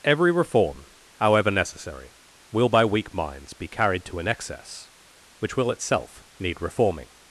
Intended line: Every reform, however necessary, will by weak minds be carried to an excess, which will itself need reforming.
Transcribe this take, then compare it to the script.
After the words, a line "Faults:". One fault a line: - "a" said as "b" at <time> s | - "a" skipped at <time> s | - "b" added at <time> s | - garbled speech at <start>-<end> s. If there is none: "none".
Every reform, however necessary, will by weak minds be carried to an excess, which will itself need reforming.
Faults:
none